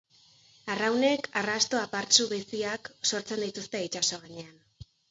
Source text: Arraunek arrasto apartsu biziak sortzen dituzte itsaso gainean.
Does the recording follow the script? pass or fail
pass